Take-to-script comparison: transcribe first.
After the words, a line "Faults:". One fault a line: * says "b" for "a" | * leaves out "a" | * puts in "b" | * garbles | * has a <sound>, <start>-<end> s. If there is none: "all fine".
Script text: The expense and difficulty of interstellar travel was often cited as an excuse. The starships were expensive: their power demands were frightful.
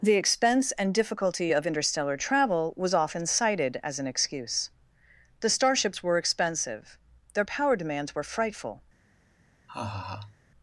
The expense and difficulty of interstellar travel was often cited as an excuse. The starships were expensive: their power demands were frightful.
Faults:
* has a laugh, 9.7-10.4 s